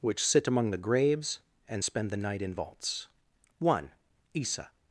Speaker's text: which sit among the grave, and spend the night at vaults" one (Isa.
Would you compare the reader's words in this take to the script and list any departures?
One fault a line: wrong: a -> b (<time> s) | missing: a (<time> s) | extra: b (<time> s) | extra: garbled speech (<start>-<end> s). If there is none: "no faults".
wrong: grave -> graves (0.8 s)
wrong: at -> in (2.4 s)